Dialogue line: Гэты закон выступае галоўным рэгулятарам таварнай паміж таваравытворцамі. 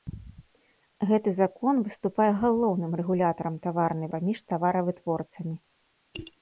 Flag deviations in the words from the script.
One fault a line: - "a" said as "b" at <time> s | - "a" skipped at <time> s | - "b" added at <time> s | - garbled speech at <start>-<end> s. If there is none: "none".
none